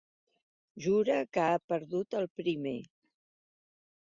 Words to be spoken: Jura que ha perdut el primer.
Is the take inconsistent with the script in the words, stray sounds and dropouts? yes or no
no